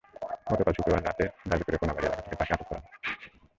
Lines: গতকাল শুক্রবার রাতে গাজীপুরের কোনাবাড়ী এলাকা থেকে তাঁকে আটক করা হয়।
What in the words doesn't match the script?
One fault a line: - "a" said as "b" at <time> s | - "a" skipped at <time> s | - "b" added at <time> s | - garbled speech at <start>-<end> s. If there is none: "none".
none